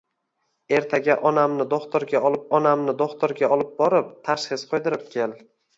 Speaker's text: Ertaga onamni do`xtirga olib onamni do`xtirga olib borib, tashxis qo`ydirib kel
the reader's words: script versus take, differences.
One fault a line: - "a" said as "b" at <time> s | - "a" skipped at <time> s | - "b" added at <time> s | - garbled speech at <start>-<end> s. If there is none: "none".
none